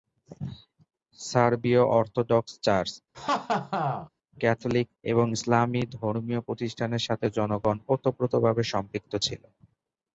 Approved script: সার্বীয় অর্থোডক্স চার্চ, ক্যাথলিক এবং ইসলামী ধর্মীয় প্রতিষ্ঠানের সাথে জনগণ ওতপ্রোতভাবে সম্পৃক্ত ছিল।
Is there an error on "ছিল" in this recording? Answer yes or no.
no